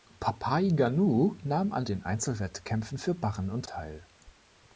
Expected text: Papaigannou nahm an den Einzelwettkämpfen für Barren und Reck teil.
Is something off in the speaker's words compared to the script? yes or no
yes